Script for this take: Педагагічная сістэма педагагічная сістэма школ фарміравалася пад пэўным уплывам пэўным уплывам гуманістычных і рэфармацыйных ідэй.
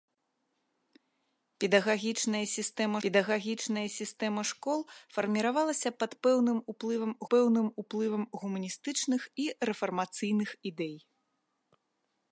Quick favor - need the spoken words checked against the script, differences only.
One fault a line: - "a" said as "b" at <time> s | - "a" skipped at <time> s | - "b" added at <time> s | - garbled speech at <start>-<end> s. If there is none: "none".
none